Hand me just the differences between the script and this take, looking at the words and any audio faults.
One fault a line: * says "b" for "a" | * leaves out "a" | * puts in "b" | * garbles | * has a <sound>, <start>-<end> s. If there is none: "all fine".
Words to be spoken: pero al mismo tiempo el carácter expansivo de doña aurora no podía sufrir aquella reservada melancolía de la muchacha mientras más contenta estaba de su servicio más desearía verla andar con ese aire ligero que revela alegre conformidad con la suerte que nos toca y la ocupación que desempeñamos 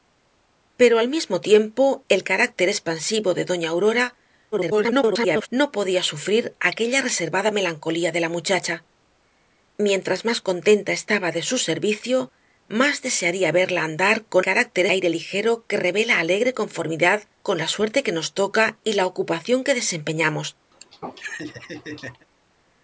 * garbles
* says "carácter" for "ese"
* has a laugh, 20.7-22.3 s